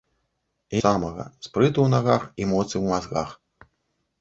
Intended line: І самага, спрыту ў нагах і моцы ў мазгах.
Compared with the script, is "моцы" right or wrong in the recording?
right